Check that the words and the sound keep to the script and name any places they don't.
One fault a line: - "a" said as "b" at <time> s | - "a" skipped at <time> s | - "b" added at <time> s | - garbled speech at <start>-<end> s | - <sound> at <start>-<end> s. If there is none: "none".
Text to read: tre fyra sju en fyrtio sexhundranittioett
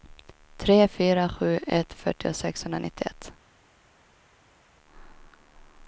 - "en" said as "ett" at 1.7 s